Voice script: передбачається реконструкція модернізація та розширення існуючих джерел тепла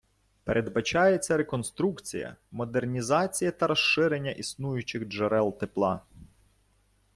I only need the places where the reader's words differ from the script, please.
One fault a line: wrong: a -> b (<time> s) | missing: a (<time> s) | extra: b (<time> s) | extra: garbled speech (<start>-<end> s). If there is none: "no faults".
no faults